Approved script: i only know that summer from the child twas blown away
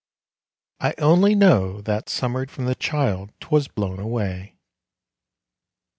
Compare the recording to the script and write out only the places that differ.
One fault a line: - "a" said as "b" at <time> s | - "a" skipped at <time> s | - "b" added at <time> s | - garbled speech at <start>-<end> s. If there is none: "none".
none